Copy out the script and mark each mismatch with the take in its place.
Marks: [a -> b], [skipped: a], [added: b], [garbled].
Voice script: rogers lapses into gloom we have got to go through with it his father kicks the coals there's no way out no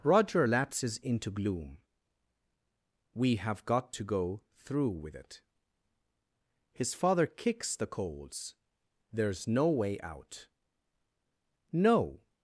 [rogers -> roger] lapses into gloom we have got to go through with it his father kicks the coals there's no way out no